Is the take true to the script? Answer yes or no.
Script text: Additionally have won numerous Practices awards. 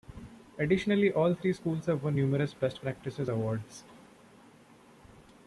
no